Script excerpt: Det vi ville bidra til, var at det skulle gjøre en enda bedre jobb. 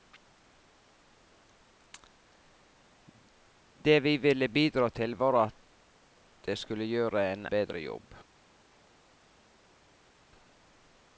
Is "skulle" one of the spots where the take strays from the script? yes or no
no